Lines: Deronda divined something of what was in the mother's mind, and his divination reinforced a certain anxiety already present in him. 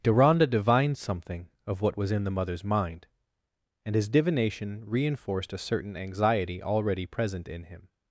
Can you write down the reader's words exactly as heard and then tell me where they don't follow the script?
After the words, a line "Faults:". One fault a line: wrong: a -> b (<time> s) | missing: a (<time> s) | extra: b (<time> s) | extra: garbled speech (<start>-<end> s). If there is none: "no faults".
Deronda divined something of what was in the mother's mind, and his divination reinforced a certain anxiety already present in him.
Faults:
no faults